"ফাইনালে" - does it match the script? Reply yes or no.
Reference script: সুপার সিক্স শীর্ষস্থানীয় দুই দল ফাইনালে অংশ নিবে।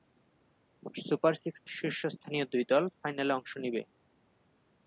yes